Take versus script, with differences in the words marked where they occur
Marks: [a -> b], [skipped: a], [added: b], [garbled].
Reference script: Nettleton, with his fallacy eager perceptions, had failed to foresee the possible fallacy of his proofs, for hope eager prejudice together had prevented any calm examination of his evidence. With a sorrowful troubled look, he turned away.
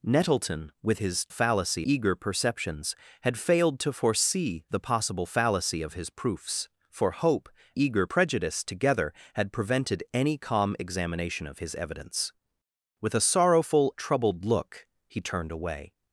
Nettleton, with his fallacy eager perceptions, had failed to foresee the possible fallacy of his proofs, for hope eager prejudice together had prevented any calm examination of his evidence. With a sorrowful troubled look, he turned away.